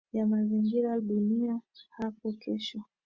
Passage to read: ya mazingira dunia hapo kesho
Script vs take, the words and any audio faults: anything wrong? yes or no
no